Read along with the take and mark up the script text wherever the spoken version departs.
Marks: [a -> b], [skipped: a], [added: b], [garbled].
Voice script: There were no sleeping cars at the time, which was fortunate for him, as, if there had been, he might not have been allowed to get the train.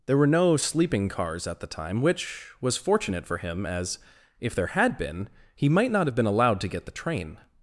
There were no sleeping cars at the time, which was fortunate for him, as, if there had been, he might not have been allowed to get the train.